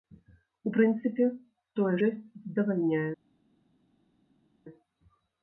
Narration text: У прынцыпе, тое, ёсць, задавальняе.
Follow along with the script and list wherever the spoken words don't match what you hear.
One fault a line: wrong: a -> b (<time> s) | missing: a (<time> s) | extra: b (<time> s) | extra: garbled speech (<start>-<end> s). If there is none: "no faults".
no faults